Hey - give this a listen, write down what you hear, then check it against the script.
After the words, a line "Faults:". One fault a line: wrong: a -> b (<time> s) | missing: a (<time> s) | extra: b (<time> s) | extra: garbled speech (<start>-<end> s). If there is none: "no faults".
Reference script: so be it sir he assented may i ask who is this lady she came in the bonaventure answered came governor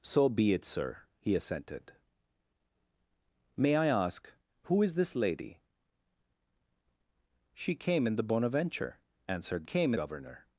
so be it sir he assented may i ask who is this lady she came in the bonaventure answered came governor
Faults:
no faults